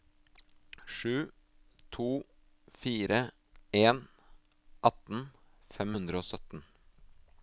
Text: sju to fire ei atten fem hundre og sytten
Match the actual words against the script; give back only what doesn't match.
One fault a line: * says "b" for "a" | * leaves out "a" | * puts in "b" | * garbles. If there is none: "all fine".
* says "en" for "ei"